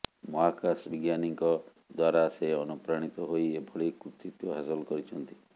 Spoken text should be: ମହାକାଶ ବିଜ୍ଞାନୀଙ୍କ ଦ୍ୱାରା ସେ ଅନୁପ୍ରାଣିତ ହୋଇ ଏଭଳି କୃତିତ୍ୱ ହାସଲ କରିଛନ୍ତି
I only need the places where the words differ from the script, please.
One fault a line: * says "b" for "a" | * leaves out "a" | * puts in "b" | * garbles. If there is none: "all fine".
all fine